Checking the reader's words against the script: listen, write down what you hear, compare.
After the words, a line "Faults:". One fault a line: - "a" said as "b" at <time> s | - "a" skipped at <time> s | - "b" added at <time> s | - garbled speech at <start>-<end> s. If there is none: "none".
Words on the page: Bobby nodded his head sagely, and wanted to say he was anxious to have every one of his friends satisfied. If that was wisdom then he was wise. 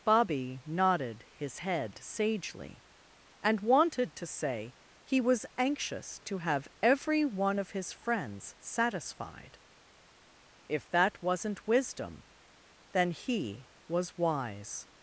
Bobby nodded his head sagely, and wanted to say he was anxious to have every one of his friends satisfied. If that wasn't wisdom then he was wise.
Faults:
- "was" said as "wasn't" at 11.2 s